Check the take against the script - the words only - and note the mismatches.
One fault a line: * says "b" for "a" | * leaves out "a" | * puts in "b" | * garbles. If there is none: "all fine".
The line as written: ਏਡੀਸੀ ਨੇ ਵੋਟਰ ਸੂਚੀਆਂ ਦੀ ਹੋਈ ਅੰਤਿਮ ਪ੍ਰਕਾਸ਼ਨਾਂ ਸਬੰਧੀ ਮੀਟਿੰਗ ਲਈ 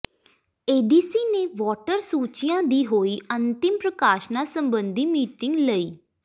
all fine